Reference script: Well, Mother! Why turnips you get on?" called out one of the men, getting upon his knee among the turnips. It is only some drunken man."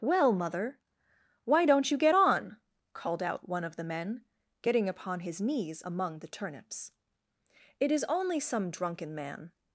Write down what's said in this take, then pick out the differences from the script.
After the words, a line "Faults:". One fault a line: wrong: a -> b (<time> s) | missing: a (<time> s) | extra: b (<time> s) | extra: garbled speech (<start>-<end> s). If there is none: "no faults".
Well, Mother! Why don't you get on?" called out one of the men, getting upon his knees among the turnips. It is only some drunken man."
Faults:
wrong: turnips -> don't (1.6 s)
wrong: knee -> knees (5.4 s)